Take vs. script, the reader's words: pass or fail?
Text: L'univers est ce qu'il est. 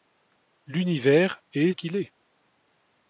fail